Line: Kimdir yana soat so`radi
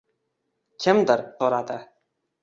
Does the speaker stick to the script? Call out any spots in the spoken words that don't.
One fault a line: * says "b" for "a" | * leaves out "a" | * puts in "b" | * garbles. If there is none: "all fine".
* leaves out "yana soat"